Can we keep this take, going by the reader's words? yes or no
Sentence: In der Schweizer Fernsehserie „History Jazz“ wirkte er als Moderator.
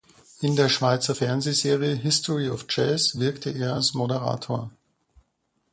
no